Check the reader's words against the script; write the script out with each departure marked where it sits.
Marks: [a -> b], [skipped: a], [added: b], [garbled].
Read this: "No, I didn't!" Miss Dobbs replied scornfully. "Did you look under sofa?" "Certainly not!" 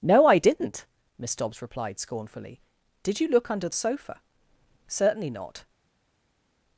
"No, I didn't!" Miss Dobbs replied scornfully. "Did you look under sofa?" "Certainly not!"